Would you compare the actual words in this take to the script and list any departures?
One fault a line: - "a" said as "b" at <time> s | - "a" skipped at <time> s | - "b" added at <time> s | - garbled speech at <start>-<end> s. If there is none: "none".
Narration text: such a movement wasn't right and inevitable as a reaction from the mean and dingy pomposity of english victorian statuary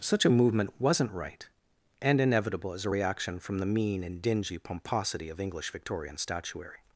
none